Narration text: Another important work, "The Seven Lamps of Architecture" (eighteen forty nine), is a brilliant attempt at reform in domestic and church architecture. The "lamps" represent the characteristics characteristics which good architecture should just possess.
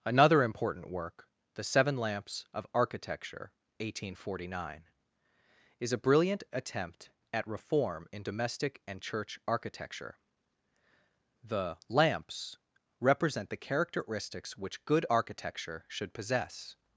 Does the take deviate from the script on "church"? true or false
false